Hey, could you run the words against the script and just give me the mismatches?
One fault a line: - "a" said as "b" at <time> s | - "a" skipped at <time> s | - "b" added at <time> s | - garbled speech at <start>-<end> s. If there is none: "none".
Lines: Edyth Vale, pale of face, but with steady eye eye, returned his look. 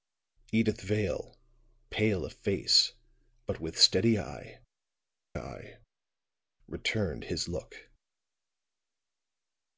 none